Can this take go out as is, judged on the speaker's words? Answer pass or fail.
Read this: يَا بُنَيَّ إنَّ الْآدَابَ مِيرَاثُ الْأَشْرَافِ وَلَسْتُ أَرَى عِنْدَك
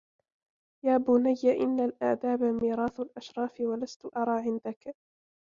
pass